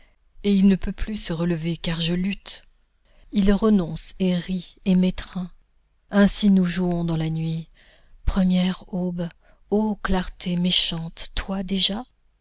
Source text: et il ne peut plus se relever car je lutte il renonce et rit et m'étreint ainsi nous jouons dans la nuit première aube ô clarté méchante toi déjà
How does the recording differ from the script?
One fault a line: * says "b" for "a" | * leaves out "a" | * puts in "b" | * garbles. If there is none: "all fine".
all fine